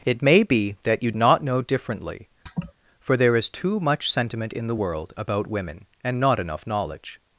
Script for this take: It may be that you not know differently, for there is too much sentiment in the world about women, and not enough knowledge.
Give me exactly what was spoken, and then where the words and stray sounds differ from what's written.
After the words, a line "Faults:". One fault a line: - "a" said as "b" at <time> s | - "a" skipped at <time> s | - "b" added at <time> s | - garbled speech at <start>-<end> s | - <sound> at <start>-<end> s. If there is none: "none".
It may be that you not know differently, for there is too much sentiment in the world about women, and not enough knowledge.
Faults:
- laugh at 2.5-2.7 s